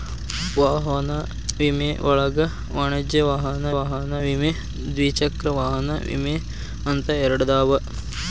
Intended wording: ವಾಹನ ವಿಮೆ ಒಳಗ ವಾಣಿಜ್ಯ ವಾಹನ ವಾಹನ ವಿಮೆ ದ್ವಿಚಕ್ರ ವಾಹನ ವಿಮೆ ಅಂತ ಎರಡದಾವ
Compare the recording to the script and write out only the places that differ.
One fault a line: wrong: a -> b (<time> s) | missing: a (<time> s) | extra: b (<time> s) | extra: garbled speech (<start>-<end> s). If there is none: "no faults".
no faults